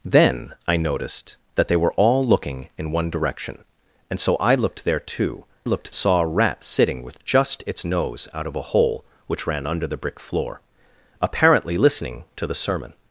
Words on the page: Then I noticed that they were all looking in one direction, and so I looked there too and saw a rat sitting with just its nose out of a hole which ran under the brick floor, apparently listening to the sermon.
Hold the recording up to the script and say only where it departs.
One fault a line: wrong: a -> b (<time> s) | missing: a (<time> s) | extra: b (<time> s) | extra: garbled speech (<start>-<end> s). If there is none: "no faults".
wrong: and -> looked (5.6 s)